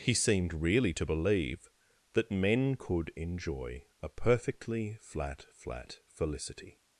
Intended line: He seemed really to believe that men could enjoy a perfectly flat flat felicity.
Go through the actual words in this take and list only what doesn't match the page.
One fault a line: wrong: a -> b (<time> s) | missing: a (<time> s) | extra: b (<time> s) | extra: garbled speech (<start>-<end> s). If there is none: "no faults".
no faults